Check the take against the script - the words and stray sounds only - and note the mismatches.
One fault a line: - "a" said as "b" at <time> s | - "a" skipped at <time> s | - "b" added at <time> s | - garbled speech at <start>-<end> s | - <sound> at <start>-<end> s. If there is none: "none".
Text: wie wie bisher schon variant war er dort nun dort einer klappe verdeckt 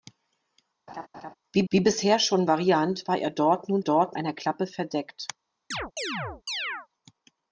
- laugh at 0.9-1.3 s
- chirp at 5.7-6.9 s